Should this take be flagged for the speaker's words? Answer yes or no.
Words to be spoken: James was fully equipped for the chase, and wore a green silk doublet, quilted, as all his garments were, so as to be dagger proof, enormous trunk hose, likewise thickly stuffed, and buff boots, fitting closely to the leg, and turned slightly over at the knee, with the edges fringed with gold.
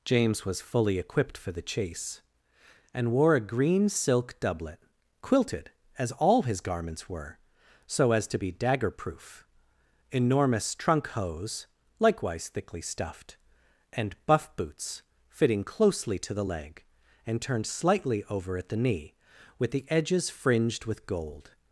no